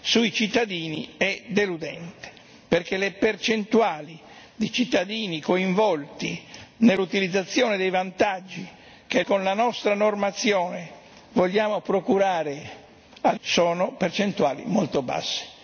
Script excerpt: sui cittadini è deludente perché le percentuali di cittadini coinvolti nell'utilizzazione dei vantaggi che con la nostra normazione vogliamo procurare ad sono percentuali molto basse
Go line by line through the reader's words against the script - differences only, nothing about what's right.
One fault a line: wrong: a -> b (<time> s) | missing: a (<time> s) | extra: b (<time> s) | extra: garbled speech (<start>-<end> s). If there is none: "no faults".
no faults